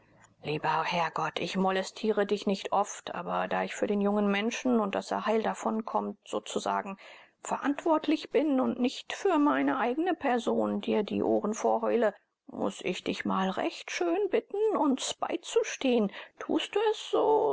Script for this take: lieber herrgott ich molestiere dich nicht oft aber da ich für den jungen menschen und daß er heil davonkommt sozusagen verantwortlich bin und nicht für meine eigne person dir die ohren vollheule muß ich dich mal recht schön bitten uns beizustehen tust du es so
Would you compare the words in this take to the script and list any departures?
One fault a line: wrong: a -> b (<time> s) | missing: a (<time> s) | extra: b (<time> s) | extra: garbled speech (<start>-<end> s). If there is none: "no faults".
no faults